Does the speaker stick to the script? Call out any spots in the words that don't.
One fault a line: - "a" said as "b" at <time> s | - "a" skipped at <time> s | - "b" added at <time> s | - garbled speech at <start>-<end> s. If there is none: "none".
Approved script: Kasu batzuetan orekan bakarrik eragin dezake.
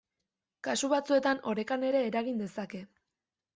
- "bakarrik" said as "ere" at 1.9 s